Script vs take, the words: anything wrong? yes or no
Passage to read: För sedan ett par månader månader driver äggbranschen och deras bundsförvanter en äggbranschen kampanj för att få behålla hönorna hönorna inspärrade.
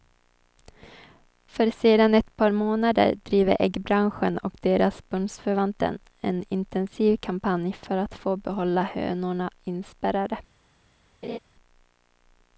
yes